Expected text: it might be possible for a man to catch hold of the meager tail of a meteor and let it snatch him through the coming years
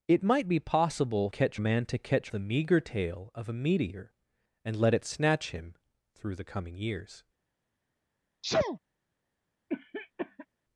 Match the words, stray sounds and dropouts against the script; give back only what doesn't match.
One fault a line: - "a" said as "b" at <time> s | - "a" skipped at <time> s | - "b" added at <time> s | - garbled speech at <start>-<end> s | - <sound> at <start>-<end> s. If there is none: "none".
- "for" said as "catch" at 1.3 s
- "hold of" skipped at 2.3 s
- sneeze at 8.4-8.8 s
- cough at 9.7-10.5 s